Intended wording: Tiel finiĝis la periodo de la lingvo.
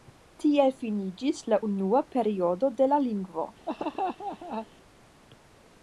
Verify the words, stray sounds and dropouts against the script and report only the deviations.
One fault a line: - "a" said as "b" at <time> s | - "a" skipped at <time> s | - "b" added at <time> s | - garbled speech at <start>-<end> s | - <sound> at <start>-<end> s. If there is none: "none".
- "unua" added at 1.7 s
- laugh at 3.7-4.7 s